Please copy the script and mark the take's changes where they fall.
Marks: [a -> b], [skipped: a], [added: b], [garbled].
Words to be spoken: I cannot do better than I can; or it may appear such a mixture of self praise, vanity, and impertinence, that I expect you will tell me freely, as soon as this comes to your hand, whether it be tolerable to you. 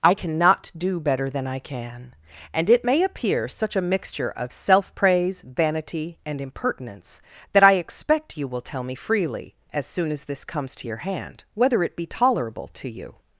I cannot do better than I can; [or -> and] it may appear such a mixture of self praise, vanity, and impertinence, that I expect you will tell me freely, as soon as this comes to your hand, whether it be tolerable to you.